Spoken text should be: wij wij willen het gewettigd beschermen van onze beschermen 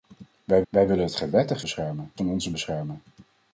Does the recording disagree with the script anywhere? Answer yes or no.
no